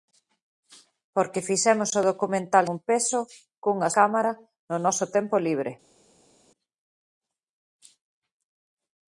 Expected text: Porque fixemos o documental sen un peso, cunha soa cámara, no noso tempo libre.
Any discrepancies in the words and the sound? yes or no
yes